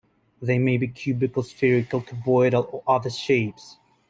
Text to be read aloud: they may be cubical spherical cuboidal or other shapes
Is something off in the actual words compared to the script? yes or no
no